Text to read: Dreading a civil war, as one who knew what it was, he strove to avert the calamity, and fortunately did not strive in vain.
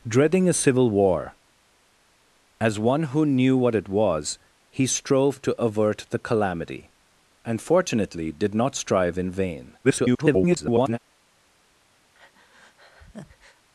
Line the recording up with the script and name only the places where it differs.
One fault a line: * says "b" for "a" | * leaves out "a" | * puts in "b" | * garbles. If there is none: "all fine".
* garbles